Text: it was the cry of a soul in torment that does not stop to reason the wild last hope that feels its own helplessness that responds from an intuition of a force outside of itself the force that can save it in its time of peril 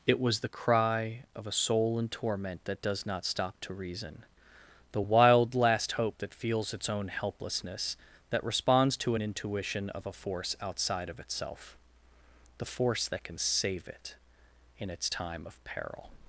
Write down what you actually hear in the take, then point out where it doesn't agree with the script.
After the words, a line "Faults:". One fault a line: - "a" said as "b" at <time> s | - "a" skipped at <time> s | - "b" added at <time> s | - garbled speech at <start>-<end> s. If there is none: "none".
it was the cry of a soul in torment that does not stop to reason the wild last hope that feels its own helplessness that responds to an intuition of a force outside of itself the force that can save it in its time of peril
Faults:
- "from" said as "to" at 9.0 s